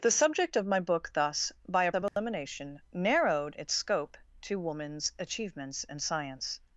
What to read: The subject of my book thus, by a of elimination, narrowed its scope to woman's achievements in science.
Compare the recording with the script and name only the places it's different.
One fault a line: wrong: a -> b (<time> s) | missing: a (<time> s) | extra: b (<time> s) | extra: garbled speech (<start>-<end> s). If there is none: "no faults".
no faults